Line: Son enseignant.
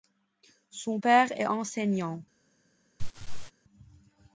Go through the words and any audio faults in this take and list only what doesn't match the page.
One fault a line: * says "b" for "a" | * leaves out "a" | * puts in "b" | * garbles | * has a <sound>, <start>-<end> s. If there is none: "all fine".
* puts in "père est"
* has a laugh, 3.0-3.5 s